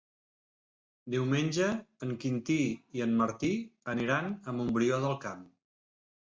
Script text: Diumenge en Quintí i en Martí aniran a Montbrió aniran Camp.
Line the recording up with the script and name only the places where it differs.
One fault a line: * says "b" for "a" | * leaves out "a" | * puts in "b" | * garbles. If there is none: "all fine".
* says "del" for "aniran"